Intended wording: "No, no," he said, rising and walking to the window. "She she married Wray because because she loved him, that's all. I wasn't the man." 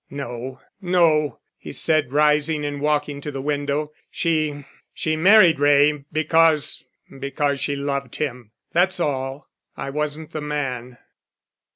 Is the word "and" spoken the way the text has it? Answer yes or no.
yes